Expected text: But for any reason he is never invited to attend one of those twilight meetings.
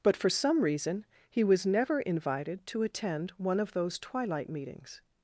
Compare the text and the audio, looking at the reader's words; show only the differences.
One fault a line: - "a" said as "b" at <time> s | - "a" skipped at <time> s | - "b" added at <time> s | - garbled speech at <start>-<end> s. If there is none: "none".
- "any" said as "some" at 0.3 s
- "is" said as "was" at 1.4 s